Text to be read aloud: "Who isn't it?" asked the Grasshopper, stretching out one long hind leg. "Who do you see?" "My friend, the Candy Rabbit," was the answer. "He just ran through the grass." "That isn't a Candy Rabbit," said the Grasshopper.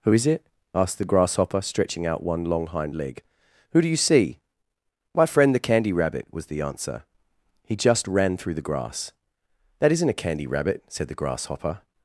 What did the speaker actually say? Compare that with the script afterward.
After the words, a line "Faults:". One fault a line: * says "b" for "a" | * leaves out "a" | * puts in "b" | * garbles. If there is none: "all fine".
"Who is it?" asked the Grasshopper, stretching out one long hind leg. "Who do you see?" "My friend, the Candy Rabbit," was the answer. "He just ran through the grass." "That isn't a Candy Rabbit," said the Grasshopper.
Faults:
* says "is" for "isn't"